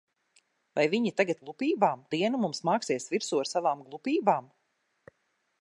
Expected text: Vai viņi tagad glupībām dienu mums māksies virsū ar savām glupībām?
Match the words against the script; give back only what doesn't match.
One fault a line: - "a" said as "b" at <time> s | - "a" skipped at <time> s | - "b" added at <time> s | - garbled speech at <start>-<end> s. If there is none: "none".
none